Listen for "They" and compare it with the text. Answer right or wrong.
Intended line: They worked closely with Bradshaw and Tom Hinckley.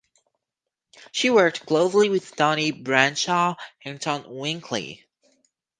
wrong